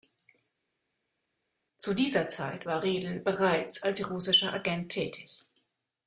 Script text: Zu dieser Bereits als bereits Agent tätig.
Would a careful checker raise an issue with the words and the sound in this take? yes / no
yes